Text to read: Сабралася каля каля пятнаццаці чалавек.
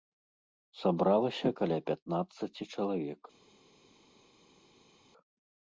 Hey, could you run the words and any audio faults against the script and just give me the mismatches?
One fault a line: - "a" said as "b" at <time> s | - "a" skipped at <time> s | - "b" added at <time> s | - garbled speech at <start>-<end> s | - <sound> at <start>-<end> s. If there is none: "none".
- "каля" skipped at 1.8 s